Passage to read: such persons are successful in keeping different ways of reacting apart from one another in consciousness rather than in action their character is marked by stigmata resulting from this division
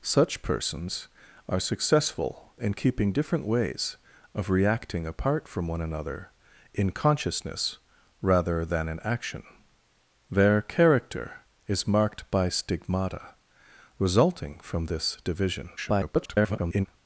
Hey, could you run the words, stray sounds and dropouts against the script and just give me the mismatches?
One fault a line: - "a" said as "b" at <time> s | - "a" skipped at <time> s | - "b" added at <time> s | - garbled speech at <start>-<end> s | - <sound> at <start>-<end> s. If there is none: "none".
- garbled speech at 15.8-16.9 s